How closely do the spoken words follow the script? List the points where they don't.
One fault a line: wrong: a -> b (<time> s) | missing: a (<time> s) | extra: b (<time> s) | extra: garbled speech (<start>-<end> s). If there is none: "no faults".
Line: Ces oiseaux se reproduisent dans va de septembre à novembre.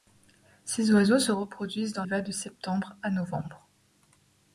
no faults